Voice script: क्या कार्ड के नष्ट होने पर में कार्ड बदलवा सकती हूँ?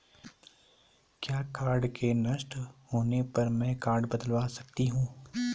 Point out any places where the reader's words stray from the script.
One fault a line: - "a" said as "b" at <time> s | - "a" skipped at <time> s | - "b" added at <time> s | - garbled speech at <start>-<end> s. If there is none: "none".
none